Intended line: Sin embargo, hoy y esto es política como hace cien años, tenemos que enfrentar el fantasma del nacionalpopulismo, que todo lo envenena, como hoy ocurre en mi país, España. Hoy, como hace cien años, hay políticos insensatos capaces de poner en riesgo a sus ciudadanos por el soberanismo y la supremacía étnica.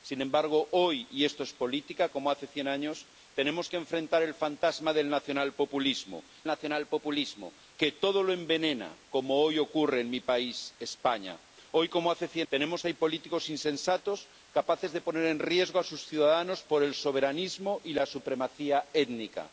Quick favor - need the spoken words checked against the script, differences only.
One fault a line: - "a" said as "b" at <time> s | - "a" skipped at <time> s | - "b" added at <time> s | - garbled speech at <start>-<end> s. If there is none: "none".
- "nacionalpopulismo" added at 6.5 s
- "años" said as "tenemos" at 12.5 s